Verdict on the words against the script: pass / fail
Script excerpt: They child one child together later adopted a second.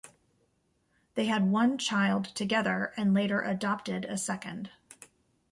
fail